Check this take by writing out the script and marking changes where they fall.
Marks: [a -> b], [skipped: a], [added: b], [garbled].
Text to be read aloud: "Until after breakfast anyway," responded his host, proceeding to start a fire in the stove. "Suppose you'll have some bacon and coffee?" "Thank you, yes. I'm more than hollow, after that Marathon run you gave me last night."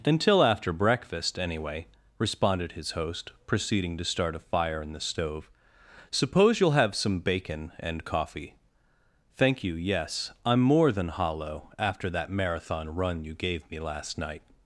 "Until after breakfast anyway," responded his host, proceeding to start a fire in the stove. "Suppose you'll have some bacon and coffee?" "Thank you, yes. I'm more than hollow, after that Marathon run you gave me last night."